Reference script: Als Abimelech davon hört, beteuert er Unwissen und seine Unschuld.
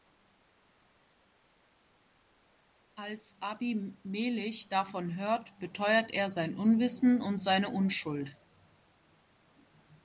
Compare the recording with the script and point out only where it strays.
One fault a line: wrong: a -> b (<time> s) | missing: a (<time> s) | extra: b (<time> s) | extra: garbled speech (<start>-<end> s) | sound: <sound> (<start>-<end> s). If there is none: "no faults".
extra: sein (6.3 s)